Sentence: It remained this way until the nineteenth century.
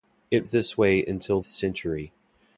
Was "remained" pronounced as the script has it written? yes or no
no